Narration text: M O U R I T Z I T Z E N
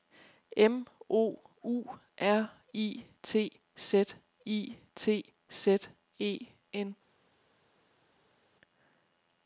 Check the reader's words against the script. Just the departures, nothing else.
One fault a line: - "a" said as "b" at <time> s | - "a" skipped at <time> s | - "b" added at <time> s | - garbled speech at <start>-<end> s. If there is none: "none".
none